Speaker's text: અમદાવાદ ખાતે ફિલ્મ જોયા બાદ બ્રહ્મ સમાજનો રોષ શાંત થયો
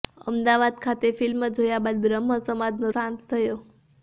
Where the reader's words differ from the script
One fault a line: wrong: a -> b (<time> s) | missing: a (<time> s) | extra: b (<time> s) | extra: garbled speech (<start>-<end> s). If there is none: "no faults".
missing: રોષ (2.9 s)